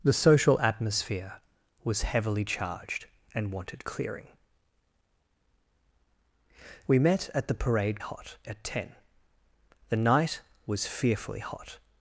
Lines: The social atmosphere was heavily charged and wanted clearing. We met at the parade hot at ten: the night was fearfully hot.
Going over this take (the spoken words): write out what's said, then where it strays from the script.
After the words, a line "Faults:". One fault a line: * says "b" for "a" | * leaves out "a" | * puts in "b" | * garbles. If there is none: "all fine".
The social atmosphere was heavily charged and wanted clearing. We met at the parade hot at ten: the night was fearfully hot.
Faults:
all fine